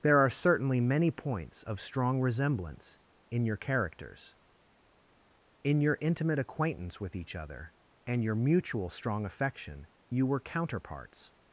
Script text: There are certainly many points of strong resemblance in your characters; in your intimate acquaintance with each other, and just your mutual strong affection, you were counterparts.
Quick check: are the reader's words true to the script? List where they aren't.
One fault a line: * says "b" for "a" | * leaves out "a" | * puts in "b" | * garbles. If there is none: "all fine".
* leaves out "just"